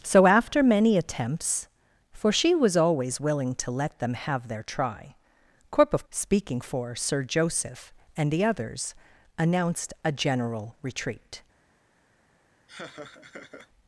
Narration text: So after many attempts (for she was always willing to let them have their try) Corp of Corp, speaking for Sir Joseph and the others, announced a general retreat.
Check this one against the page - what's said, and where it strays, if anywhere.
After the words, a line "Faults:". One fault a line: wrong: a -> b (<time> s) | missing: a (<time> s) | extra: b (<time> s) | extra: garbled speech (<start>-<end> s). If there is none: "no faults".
So after many attempts (for she was always willing to let them have their try) Corp of Speaking for Sir Joseph and the others, announced a general retreat.
Faults:
missing: Corp (6.0 s)